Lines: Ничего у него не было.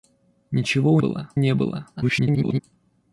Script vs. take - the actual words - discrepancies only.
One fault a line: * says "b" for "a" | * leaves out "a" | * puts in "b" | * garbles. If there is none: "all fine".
* says "было" for "него"
* garbles